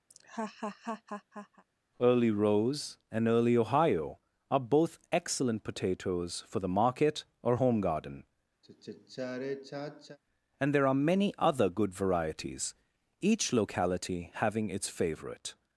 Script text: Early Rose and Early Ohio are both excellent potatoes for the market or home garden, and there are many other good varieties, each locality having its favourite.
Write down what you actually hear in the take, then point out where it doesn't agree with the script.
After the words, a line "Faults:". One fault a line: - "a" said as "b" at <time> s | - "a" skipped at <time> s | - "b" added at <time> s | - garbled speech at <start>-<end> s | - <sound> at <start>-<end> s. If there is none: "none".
Early Rose and Early Ohio are both excellent potatoes for the market or home garden, and there are many other good varieties, each locality having its favourite.
Faults:
- laugh at 0.1-1.6 s
- sigh at 8.6-10.2 s